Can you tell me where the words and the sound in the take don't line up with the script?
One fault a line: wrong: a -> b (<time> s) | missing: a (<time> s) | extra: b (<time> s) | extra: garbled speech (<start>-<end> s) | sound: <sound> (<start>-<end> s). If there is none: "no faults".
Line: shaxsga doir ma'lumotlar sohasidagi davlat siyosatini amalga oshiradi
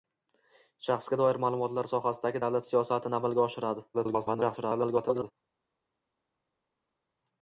extra: garbled speech (3.9-5.3 s)